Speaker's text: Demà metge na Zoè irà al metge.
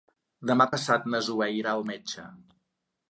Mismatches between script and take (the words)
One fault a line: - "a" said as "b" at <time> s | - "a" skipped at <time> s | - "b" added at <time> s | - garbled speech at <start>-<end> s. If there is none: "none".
- "metge" said as "passat" at 0.7 s